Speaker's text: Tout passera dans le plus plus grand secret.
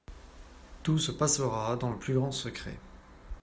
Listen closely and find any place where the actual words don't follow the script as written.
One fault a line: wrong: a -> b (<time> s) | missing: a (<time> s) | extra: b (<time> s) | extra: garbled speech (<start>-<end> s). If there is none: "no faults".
extra: se (1.0 s)
missing: plus (2.1 s)